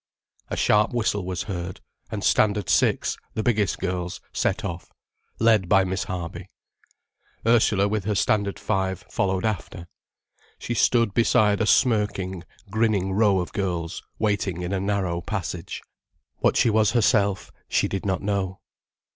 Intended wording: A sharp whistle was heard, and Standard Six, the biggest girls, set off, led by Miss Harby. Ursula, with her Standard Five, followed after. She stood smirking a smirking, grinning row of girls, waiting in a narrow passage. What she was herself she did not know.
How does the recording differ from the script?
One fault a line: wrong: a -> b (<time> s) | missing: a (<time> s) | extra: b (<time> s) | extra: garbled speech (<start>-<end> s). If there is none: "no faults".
wrong: smirking -> beside (11.1 s)